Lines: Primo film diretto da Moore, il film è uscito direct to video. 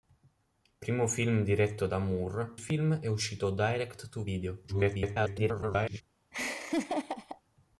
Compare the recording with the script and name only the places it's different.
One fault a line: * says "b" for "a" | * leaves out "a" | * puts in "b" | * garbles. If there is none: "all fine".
* leaves out "il"
* garbles